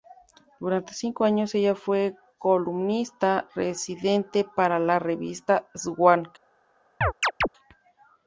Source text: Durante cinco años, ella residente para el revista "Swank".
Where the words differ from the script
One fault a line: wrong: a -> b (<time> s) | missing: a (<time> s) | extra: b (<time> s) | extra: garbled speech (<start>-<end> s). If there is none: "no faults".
extra: fue columnista (1.8 s)
wrong: el -> la (4.8 s)